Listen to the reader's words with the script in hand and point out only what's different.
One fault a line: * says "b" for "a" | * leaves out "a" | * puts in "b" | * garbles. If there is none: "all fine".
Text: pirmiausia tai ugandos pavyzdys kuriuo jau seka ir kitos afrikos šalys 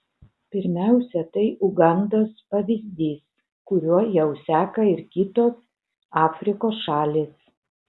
all fine